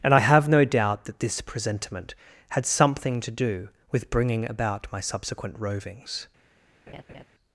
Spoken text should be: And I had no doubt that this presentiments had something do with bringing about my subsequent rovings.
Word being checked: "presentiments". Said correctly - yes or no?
no